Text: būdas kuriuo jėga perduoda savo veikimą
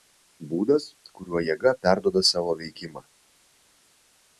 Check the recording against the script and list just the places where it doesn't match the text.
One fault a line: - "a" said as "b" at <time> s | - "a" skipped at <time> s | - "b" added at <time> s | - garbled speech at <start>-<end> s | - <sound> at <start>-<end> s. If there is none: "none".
none